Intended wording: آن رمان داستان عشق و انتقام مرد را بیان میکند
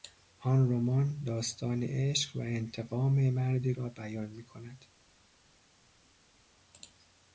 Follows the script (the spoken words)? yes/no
yes